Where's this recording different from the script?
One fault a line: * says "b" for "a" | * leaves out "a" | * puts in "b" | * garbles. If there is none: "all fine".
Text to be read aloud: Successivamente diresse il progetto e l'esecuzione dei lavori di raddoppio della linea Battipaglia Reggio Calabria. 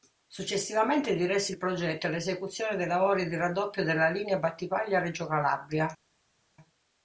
all fine